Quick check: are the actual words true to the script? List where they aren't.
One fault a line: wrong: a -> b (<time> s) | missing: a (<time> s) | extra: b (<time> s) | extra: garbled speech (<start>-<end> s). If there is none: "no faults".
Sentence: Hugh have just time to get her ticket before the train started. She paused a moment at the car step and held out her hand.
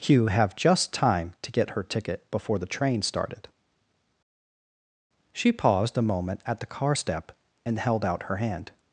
no faults